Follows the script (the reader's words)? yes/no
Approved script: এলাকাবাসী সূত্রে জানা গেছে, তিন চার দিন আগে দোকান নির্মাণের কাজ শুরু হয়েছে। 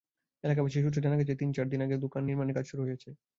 yes